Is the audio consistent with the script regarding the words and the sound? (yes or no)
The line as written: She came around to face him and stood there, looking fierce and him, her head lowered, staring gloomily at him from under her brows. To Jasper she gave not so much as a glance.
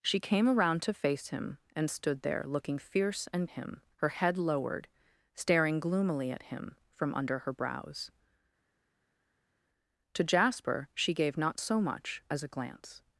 yes